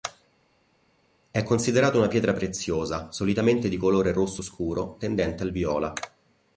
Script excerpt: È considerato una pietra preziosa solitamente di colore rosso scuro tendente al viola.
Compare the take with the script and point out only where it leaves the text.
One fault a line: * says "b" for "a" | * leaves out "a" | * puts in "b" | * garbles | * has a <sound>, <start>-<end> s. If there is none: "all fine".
all fine